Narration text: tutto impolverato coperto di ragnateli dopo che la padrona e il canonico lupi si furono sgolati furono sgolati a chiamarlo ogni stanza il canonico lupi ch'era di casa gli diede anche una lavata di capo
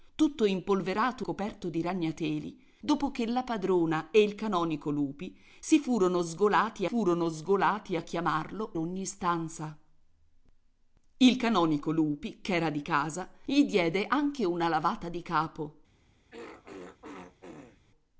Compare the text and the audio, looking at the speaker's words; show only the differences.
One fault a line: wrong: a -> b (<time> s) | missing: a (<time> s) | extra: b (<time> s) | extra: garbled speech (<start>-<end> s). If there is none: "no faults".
no faults